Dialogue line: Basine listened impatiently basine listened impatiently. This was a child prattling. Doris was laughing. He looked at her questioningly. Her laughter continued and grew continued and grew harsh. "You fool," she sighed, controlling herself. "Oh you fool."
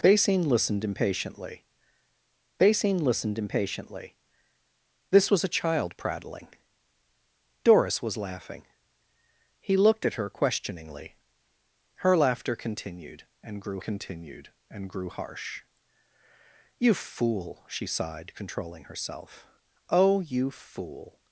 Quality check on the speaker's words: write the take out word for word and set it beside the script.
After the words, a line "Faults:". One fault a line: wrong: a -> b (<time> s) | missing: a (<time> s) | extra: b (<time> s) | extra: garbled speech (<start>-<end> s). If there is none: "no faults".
Basine listened impatiently basine listened impatiently. This was a child prattling. Doris was laughing. He looked at her questioningly. Her laughter continued and grew continued and grew harsh. "You fool," she sighed, controlling herself. "Oh you fool."
Faults:
no faults